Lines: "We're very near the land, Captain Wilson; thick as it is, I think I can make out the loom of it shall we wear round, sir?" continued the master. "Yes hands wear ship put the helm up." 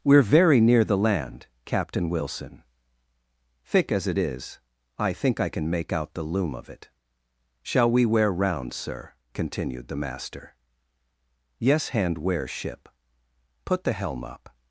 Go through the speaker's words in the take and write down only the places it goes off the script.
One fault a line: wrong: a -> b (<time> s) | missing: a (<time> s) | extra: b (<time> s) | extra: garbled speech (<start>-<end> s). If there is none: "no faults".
wrong: hands -> hand (11.9 s)